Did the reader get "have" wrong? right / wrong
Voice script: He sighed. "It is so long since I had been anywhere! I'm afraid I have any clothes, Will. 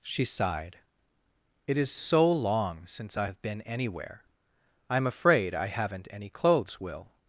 wrong